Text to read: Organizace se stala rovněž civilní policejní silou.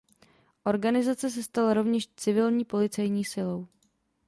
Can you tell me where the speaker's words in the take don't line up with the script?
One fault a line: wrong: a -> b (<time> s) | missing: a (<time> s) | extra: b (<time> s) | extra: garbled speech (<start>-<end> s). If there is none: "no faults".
no faults